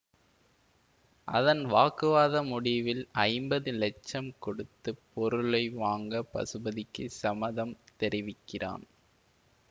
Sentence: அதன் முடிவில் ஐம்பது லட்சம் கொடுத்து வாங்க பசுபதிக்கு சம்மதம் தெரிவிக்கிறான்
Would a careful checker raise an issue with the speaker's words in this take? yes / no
yes